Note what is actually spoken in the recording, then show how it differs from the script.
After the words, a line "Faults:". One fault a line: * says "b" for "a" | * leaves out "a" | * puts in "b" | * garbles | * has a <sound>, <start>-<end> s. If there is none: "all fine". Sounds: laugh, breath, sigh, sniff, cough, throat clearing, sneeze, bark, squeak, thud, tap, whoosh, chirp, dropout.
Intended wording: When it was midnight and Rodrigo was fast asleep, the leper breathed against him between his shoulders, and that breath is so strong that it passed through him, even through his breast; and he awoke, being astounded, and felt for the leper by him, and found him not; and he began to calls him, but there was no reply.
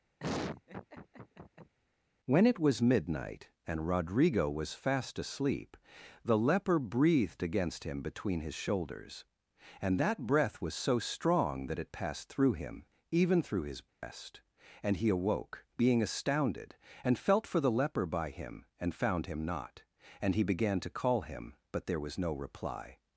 When it was midnight and Rodrigo was fast asleep, the leper breathed against him between his shoulders, and that breath was so strong that it passed through him, even through his breast; and he awoke, being astounded, and felt for the leper by him, and found him not; and he began to call him, but there was no reply.
Faults:
* has a laugh, 0.2-1.7 s
* says "was" for "is"
* has a dropout, 13.9-14.0 s
* says "call" for "calls"